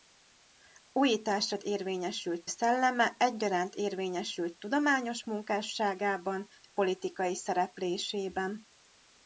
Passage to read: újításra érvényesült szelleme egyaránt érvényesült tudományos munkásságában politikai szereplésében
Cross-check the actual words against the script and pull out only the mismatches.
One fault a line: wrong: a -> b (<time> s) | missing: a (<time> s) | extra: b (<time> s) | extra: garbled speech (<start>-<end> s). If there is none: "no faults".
no faults